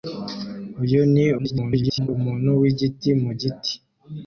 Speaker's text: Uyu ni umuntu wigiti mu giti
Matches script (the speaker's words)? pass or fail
fail